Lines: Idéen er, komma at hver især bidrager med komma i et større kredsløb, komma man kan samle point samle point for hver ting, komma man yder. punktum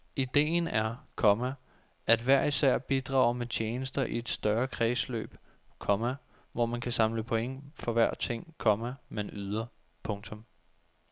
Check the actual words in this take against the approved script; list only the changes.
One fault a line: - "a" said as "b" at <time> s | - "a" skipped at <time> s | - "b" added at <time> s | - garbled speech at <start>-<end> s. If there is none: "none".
- "komma" said as "tjenester" at 3.5 s
- "hvor" added at 6.5 s
- "samle point" skipped at 7.6 s